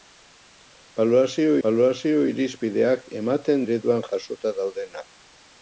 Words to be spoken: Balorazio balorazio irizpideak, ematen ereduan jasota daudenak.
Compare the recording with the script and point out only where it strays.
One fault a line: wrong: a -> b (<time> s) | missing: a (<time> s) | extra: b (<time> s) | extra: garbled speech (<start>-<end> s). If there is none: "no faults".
no faults